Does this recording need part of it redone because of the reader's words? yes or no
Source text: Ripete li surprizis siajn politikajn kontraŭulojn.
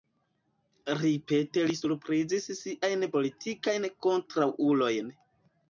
no